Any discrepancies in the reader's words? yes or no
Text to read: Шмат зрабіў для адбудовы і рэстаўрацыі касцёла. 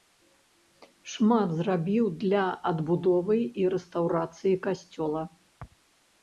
no